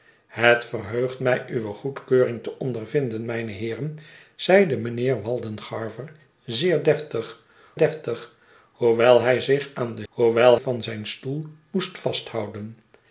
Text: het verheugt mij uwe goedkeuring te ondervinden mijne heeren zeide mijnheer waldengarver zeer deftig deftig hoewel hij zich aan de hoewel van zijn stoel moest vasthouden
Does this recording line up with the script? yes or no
yes